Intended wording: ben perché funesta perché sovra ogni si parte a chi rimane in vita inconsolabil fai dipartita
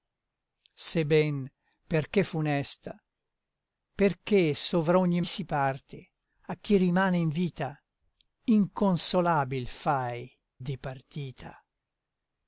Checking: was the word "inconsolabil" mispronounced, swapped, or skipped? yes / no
no